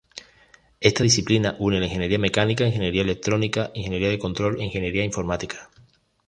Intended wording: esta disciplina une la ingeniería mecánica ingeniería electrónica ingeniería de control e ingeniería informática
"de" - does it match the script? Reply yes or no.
yes